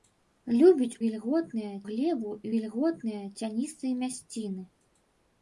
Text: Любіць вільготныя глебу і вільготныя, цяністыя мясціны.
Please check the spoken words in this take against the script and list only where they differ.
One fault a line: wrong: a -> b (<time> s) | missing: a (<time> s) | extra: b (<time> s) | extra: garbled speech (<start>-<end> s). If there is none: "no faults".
no faults